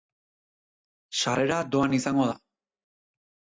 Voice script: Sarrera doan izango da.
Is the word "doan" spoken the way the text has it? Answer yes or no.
yes